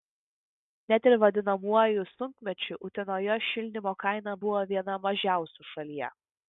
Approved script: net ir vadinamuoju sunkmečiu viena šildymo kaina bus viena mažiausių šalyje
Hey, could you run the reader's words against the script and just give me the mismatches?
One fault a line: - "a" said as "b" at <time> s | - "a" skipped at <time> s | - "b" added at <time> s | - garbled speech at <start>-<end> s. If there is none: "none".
- "viena" said as "utenoje" at 2.9 s
- "bus" said as "buvo" at 4.5 s